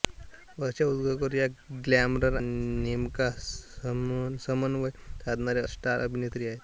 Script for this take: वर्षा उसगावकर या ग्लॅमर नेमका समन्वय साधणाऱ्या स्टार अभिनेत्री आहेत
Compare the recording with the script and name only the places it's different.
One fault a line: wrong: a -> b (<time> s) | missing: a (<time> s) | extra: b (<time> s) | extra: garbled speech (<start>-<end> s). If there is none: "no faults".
no faults